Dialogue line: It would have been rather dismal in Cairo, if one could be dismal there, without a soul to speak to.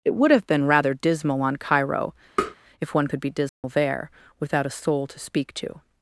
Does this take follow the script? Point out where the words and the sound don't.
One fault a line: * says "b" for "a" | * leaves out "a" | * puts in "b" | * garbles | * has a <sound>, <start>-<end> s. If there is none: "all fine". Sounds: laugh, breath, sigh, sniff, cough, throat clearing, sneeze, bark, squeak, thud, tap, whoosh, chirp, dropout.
* says "on" for "in"
* has a tap, 2.4-2.6 s
* has a dropout, 3.5-3.6 s